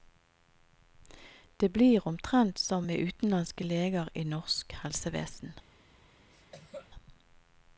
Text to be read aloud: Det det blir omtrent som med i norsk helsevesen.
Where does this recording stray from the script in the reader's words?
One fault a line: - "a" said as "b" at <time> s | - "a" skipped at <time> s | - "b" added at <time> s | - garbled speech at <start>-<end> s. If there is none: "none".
- "det" skipped at 1.7 s
- "utenlandske leger" added at 3.0 s